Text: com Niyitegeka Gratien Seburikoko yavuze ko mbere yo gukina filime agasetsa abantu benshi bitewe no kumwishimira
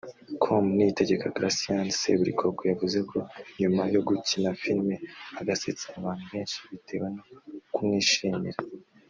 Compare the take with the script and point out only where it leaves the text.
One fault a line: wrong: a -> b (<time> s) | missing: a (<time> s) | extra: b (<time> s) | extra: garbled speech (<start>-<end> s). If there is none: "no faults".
wrong: mbere -> nyuma (3.6 s)